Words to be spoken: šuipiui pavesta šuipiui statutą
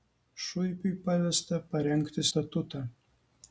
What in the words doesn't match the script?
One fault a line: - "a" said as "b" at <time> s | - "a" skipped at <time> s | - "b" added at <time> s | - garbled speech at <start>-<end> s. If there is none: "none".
- "šuipiui" said as "parengti" at 1.7 s